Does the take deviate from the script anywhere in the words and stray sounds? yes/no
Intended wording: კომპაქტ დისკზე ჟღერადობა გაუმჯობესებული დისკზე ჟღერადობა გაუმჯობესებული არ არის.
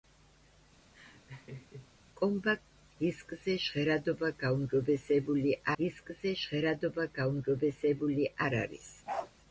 yes